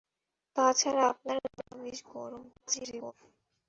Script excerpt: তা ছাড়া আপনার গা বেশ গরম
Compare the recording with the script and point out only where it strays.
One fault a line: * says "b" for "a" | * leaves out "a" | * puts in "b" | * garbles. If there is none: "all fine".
* puts in "গা"
* garbles